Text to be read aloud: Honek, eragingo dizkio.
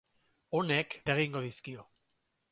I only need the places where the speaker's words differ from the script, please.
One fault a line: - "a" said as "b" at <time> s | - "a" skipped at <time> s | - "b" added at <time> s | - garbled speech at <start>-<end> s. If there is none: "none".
none